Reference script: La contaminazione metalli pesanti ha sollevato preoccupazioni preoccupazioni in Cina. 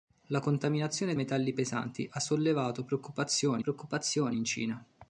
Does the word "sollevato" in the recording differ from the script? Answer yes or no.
no